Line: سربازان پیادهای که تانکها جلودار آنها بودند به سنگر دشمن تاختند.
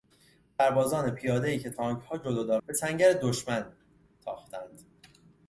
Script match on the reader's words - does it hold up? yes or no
no